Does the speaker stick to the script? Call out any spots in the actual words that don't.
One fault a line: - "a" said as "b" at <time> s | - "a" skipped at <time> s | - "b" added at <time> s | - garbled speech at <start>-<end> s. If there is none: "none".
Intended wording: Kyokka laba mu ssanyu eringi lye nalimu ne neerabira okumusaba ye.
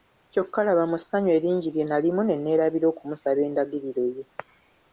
- "endagiriro" added at 3.5 s